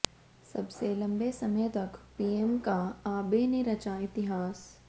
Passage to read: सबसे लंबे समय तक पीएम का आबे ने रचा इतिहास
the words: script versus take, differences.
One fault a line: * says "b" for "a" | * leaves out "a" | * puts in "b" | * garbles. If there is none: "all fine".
all fine